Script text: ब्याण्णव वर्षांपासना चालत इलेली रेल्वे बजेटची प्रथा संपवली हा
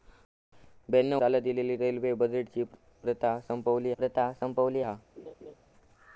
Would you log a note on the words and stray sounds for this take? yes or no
yes